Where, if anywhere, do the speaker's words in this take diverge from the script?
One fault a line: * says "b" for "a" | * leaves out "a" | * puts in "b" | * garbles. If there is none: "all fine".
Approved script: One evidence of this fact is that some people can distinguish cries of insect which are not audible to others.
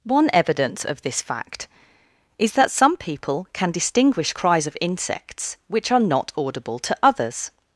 * says "insects" for "insect"